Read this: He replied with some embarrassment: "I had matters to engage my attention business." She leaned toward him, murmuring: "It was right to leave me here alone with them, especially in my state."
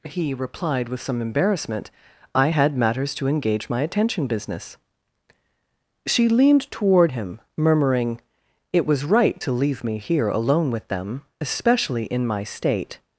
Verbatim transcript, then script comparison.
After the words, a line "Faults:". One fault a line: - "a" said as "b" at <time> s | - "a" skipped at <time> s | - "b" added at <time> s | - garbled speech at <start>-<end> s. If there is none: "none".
He replied with some embarrassment: "I had matters to engage my attention business." She leaned toward him, murmuring: "It was right to leave me here alone with them, especially in my state."
Faults:
none